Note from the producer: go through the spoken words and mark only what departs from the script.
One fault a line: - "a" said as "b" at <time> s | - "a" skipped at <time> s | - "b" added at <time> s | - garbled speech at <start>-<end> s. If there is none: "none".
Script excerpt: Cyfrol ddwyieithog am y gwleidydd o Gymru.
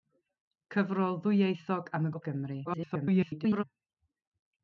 - "gwleidydd" skipped at 2.1 s
- garbled speech at 2.6-3.6 s